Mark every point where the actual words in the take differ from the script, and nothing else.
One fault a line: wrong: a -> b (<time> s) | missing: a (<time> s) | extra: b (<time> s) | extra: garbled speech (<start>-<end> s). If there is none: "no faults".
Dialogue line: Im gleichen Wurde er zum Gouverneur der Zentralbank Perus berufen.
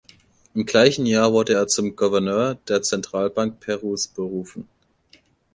extra: Jahr (1.1 s)